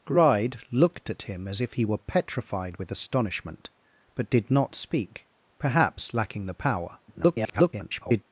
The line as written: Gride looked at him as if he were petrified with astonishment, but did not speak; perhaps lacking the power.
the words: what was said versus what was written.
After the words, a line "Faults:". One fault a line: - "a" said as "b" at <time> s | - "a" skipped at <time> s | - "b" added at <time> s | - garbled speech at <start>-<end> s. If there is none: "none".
Gride looked at him as if he were petrified with astonishment, but did not speak; perhaps lacking the power. [garbled]
Faults:
- garbled speech at 7.1-8.2 s